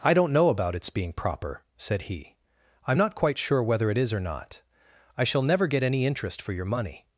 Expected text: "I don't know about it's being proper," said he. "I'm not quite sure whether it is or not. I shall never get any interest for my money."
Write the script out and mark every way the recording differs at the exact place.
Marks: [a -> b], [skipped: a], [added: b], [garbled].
"I don't know about it's being proper," said he. "I'm not quite sure whether it is or not. I shall never get any interest for [my -> your] money."